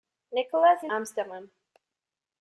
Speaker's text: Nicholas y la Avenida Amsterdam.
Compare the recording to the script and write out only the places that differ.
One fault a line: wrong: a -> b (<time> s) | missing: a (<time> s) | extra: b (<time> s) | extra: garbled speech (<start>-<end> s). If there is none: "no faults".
missing: la Avenida (0.9 s)